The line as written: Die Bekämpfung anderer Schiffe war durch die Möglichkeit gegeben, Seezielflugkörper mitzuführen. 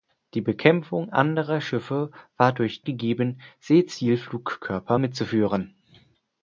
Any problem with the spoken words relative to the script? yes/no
yes